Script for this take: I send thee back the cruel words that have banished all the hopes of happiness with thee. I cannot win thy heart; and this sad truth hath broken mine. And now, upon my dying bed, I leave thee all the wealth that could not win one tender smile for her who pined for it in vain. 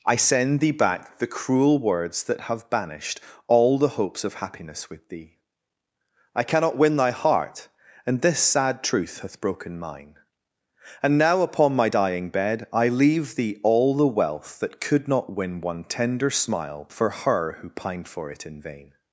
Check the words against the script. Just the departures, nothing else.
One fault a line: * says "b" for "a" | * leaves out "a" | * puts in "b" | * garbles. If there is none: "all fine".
all fine